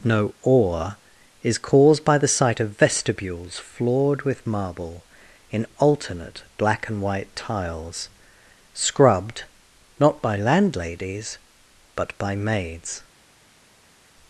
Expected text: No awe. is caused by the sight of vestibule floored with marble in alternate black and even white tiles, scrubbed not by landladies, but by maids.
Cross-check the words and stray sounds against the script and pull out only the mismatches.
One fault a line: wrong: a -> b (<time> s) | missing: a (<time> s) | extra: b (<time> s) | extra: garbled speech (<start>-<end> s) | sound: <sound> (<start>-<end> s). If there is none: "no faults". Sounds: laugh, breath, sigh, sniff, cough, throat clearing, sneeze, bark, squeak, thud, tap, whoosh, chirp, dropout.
wrong: vestibule -> vestibules (2.8 s)
missing: even (7.0 s)